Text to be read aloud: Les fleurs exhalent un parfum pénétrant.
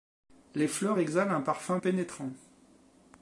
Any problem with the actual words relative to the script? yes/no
no